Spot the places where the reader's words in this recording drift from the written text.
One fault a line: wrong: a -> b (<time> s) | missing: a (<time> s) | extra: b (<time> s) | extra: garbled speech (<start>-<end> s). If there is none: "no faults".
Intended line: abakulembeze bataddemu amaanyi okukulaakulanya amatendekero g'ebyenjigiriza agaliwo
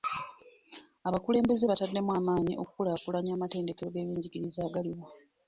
no faults